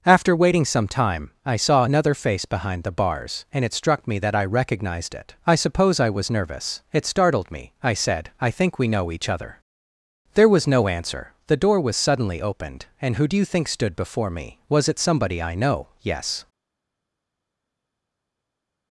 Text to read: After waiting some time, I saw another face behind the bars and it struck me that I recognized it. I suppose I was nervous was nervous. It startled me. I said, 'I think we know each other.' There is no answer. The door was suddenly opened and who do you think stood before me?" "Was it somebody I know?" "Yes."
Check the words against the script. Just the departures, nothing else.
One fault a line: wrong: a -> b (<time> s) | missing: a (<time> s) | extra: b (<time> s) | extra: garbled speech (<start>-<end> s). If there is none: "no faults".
missing: was nervous (6.8 s)
wrong: is -> was (10.5 s)